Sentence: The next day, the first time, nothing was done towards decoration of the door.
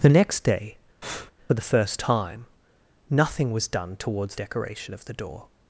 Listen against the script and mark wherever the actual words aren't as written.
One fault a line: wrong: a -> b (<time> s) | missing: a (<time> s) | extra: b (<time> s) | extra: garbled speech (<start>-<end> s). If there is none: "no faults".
no faults